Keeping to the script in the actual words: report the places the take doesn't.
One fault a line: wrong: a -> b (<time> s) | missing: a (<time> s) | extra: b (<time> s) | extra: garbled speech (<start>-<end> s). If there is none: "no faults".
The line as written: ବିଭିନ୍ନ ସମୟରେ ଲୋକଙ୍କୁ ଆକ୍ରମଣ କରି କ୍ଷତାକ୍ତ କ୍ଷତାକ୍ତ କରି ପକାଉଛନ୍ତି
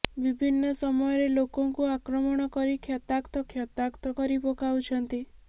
no faults